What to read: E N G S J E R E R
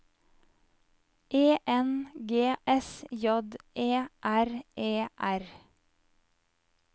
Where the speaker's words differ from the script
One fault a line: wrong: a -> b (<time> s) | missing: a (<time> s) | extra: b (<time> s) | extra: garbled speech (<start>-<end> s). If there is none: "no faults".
no faults